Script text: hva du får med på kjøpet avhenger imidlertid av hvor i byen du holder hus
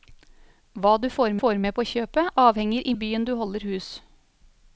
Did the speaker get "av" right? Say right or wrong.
wrong